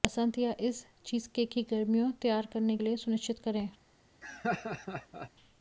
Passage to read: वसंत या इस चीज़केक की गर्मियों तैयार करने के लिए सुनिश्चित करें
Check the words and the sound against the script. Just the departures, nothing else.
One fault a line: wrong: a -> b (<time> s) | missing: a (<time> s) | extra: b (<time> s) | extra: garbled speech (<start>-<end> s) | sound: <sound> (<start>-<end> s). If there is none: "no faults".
missing: के (2.8 s)
sound: laugh (4.2-5.3 s)